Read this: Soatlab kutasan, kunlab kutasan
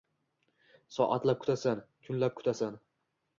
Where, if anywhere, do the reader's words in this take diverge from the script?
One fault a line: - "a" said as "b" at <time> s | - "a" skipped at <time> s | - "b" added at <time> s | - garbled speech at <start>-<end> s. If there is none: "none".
none